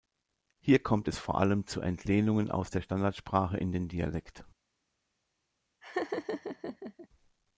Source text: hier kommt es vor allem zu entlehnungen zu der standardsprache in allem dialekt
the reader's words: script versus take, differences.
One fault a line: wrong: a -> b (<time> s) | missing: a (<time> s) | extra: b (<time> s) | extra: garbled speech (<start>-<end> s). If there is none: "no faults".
wrong: zu -> aus (2.5 s)
wrong: allem -> den (3.7 s)